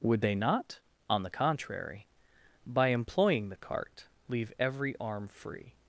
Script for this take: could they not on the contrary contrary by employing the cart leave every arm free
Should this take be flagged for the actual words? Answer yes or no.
yes